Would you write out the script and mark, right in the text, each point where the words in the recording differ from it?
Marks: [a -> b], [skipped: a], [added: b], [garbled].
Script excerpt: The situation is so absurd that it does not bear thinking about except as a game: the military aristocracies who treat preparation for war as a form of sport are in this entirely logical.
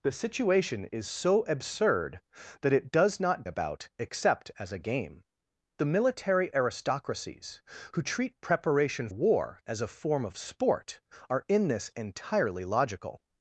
The situation is so absurd that it does not [skipped: bear thinking] about except as a game: the military aristocracies who treat preparation [skipped: for] war as a form of sport are in this entirely logical.